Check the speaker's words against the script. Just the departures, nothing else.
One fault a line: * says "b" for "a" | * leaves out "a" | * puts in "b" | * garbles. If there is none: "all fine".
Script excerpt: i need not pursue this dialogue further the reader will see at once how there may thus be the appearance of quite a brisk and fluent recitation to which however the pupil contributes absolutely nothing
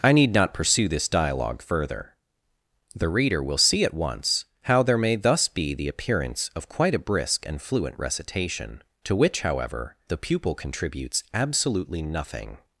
all fine